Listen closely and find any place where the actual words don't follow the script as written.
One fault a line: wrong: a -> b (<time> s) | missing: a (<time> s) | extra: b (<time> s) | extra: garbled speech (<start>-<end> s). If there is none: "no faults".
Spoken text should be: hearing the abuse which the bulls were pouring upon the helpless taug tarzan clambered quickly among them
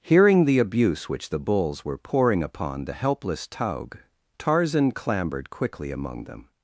no faults